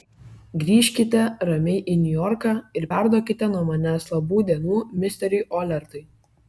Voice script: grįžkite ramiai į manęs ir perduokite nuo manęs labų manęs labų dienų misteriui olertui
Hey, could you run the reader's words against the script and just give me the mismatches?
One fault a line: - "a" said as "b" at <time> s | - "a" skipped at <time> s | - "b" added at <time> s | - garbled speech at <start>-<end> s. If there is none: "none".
- "manęs" said as "niujorką" at 2.0 s
- "manęs labų" skipped at 4.5 s